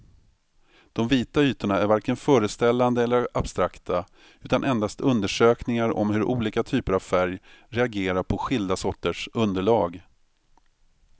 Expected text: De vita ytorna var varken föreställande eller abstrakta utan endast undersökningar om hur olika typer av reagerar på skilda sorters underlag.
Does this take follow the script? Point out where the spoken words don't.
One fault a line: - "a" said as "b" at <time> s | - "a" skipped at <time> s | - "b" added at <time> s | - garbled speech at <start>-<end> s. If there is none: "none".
- "var" said as "är" at 1.8 s
- "färg" added at 7.0 s